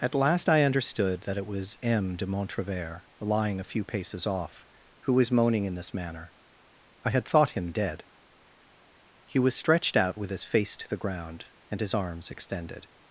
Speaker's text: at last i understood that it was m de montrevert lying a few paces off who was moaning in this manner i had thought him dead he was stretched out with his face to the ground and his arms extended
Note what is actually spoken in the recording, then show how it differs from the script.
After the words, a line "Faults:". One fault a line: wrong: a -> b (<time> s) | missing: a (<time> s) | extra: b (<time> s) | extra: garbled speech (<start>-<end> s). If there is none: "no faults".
at last i understood that it was m de montrevert lying a few paces off who was moaning in this manner i had thought him dead he was stretched out with his face to the ground and his arms extended
Faults:
no faults